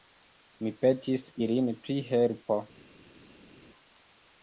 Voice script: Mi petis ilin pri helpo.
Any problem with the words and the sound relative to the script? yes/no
no